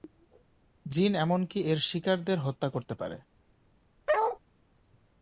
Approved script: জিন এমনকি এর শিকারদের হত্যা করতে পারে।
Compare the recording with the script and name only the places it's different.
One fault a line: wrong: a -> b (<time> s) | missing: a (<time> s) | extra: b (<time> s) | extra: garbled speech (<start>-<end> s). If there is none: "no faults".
no faults